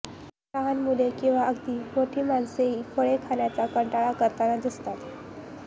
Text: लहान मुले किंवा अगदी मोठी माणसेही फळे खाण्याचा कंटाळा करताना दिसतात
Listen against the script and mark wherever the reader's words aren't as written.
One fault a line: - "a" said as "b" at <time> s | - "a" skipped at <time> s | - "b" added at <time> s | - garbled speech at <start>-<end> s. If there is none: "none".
none